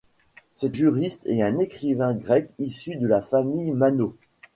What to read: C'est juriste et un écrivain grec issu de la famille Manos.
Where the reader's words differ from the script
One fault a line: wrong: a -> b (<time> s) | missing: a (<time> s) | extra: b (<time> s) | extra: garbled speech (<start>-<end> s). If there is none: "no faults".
no faults